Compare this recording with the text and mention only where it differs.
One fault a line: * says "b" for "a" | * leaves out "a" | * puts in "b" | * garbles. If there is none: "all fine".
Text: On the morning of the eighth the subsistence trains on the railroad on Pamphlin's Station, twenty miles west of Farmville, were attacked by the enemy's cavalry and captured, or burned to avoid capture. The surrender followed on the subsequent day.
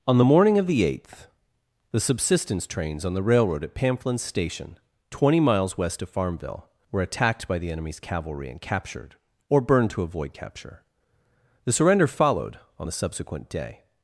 * says "at" for "on"